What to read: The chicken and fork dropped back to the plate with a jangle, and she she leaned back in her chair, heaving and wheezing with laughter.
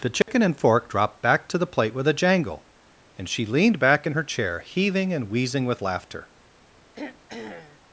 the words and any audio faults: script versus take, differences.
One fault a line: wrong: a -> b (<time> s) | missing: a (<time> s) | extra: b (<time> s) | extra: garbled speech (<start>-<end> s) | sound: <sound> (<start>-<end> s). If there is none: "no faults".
sound: dropout (0.2-0.3 s)
missing: she (3.5 s)
sound: throat clearing (6.9-7.8 s)